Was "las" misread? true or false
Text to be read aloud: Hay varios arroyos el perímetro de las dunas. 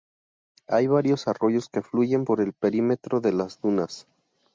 false